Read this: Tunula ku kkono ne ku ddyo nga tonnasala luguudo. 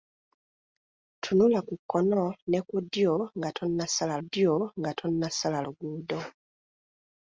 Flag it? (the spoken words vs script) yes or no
yes